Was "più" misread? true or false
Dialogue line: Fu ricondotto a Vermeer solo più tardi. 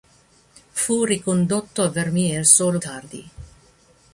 true